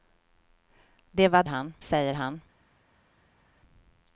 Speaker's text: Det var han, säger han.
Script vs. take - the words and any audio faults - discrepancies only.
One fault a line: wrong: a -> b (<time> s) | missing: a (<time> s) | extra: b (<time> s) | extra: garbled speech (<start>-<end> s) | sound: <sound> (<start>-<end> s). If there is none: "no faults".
no faults